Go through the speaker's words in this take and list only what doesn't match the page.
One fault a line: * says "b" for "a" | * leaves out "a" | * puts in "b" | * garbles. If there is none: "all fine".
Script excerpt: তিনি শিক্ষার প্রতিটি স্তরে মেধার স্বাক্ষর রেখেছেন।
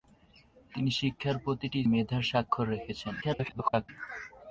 * leaves out "স্তরে"
* garbles